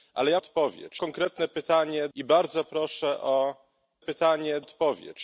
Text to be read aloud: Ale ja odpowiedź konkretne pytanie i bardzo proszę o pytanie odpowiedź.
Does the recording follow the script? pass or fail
pass